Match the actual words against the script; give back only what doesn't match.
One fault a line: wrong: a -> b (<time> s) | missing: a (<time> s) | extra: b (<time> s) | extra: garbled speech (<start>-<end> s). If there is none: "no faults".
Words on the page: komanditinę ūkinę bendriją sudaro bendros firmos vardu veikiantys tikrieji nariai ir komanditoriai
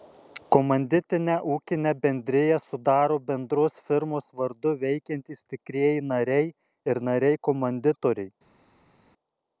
extra: nariai (7.1 s)